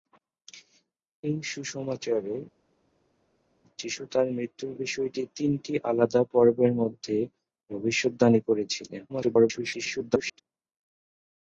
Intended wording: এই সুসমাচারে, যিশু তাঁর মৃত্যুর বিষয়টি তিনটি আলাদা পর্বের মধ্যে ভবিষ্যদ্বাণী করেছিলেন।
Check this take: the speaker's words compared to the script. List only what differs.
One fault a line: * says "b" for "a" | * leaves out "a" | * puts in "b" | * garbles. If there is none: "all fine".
* garbles